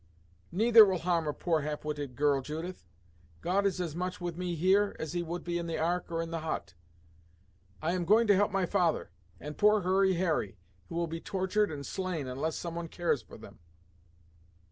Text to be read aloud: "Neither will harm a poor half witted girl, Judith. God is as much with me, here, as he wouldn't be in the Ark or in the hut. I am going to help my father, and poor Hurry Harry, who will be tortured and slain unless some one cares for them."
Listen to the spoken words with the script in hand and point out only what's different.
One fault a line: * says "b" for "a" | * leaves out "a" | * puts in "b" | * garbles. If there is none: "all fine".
* says "would" for "wouldn't"